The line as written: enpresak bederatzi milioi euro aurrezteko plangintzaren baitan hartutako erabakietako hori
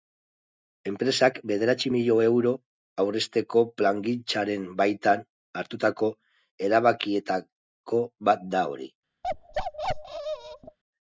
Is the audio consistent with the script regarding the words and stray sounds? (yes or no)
no